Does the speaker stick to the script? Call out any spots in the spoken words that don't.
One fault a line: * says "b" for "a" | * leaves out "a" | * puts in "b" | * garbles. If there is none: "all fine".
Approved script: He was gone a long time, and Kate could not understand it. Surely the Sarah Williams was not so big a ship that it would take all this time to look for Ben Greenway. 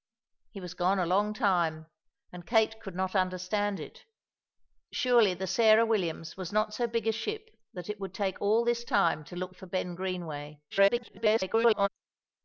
* garbles